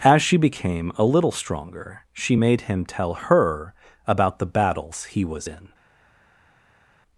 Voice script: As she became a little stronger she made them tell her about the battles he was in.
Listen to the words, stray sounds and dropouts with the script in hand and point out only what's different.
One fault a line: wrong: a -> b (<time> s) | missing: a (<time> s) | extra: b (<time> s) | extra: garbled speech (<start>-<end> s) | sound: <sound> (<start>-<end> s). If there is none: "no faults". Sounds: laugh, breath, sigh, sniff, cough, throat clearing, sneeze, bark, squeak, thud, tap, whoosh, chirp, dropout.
wrong: them -> him (2.7 s)